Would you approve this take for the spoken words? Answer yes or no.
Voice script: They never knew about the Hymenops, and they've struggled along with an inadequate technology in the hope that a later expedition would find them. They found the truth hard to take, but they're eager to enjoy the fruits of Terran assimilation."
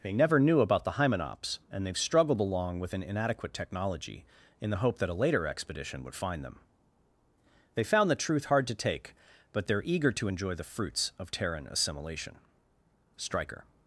no